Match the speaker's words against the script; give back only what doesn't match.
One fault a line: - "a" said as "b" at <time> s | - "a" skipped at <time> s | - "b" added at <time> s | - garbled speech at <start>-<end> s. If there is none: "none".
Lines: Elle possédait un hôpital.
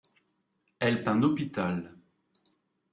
- "possédait" skipped at 1.1 s